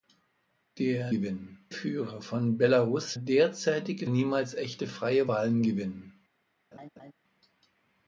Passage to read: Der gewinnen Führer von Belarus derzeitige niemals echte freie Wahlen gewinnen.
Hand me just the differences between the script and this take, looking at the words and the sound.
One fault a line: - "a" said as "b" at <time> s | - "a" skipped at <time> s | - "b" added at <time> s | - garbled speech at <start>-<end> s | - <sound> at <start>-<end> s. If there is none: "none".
- laugh at 6.7-7.1 s